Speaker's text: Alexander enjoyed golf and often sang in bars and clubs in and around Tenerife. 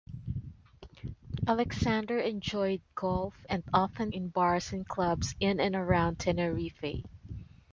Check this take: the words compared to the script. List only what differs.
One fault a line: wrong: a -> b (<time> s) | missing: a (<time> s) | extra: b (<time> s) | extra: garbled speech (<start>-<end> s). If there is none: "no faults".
missing: sang (4.1 s)